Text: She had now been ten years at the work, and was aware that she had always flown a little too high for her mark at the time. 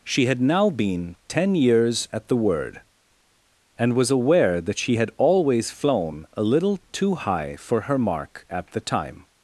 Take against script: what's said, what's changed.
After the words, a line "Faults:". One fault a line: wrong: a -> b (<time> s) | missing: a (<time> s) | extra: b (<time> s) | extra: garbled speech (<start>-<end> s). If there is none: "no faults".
She had now been ten years at the word, and was aware that she had always flown a little too high for her mark at the time.
Faults:
wrong: work -> word (2.4 s)